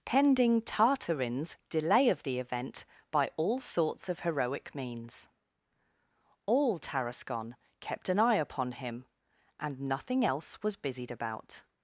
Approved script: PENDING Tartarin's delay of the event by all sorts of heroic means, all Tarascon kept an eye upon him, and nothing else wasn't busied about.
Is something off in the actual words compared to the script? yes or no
yes